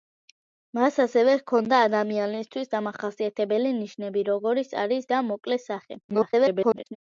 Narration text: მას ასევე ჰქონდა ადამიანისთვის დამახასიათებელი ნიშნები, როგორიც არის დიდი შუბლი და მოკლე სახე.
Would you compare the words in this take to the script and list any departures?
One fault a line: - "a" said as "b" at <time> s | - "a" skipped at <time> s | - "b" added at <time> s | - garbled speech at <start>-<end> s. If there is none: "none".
- "დიდი შუბლი" skipped at 5.1 s
- garbled speech at 6.1-7.0 s